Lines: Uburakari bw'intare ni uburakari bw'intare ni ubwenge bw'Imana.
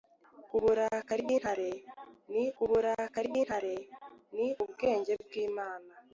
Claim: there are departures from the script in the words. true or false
false